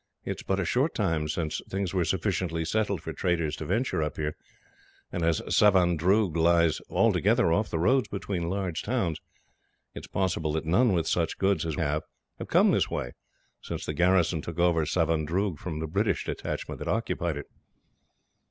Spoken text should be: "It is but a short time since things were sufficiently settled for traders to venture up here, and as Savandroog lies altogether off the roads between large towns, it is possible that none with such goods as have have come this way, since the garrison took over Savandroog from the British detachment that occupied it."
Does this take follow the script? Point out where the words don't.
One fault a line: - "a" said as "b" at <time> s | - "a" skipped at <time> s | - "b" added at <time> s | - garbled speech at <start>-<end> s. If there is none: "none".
none